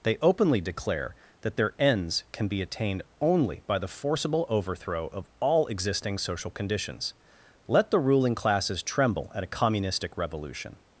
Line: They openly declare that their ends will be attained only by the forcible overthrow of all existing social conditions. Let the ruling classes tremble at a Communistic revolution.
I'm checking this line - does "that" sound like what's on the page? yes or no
yes